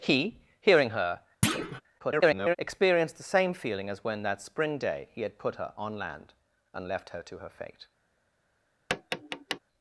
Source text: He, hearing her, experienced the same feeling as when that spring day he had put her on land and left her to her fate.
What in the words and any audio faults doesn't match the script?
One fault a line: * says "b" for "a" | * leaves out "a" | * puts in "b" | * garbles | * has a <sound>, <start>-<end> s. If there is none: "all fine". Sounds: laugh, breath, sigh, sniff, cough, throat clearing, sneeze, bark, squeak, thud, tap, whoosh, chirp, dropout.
* has a thud, 1.4-1.8 s
* garbles
* has a tap, 8.9-9.6 s